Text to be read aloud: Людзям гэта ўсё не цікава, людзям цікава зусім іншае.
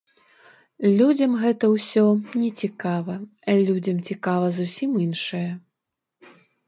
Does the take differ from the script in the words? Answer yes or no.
no